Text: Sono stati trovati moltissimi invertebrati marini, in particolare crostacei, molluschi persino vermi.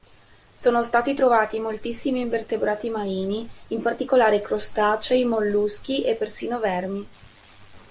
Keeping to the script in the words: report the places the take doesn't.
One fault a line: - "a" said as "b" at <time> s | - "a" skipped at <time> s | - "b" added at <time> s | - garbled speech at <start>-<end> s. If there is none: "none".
- "e" added at 6.0 s